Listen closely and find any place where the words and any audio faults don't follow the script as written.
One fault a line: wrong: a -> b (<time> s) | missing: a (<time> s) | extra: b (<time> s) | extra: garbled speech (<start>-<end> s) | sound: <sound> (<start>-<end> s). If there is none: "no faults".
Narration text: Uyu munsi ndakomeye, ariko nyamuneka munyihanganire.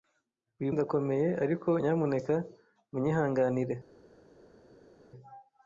missing: munsi (0.7 s)